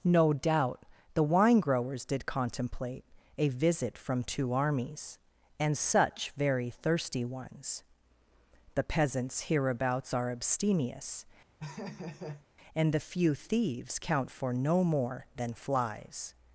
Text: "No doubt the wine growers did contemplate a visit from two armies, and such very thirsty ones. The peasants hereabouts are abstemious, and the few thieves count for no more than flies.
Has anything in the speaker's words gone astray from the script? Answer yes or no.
no